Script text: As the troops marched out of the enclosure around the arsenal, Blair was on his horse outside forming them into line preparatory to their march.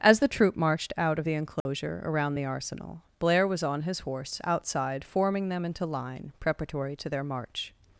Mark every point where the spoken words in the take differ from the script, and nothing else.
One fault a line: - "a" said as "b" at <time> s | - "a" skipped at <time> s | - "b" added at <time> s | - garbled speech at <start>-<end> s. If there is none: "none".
- "troops" said as "troop" at 0.3 s